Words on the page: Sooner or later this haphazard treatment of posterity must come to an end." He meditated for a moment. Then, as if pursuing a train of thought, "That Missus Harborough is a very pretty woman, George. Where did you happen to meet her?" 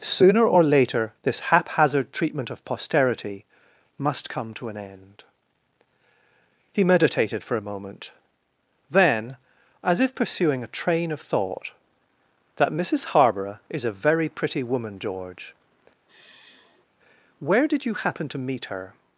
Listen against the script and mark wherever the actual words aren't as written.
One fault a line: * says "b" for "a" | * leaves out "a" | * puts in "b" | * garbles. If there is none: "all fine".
all fine